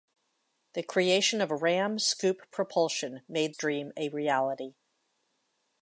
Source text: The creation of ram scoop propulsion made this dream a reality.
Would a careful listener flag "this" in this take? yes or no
yes